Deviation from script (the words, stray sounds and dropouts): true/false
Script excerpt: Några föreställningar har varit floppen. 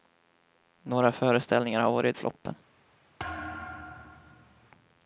true